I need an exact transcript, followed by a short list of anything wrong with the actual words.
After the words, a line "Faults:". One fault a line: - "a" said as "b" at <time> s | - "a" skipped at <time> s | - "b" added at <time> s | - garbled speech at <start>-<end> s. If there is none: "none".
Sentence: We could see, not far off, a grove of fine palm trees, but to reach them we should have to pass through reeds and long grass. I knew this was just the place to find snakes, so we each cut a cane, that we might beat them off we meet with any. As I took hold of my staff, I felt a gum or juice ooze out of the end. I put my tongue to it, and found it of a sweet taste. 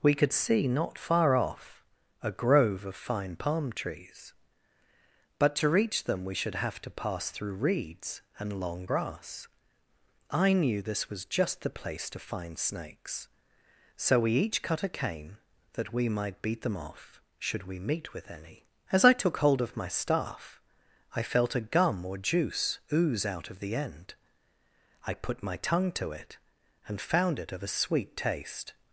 We could see, not far off, a grove of fine palm trees, but to reach them we should have to pass through reeds and long grass. I knew this was just the place to find snakes, so we each cut a cane, that we might beat them off should we meet with any. As I took hold of my staff, I felt a gum or juice ooze out of the end. I put my tongue to it, and found it of a sweet taste.
Faults:
- "should" added at 17.4 s